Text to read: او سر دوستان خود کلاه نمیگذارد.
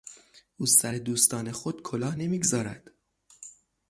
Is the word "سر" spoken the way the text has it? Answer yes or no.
yes